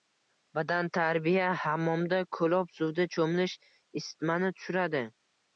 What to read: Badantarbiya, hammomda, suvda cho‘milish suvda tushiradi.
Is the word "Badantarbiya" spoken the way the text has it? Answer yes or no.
yes